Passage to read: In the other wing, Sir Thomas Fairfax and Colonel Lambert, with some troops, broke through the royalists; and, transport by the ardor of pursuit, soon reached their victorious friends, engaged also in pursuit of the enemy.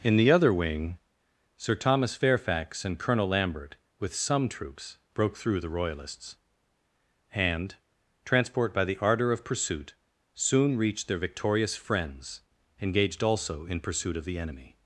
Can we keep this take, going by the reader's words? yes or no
yes